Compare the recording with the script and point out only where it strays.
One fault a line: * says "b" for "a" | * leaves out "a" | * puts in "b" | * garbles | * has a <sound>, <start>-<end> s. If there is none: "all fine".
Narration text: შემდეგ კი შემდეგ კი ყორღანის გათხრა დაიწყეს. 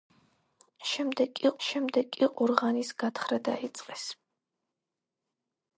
all fine